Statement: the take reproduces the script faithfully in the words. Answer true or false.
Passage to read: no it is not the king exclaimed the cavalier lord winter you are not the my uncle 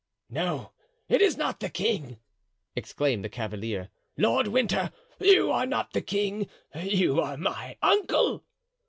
false